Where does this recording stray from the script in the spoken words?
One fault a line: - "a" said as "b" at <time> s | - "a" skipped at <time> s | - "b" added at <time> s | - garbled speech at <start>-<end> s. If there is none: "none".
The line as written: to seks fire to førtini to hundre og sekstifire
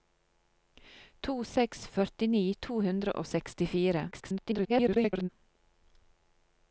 - "fire to" skipped at 1.8 s
- garbled speech at 4.1-5.3 s